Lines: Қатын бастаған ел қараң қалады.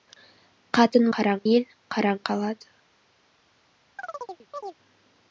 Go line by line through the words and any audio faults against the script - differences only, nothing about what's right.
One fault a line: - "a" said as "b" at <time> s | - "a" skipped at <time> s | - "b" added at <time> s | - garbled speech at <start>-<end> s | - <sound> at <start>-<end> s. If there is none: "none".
- "бастаған" said as "қараң" at 1.2 s
- chirp at 4.0-4.8 s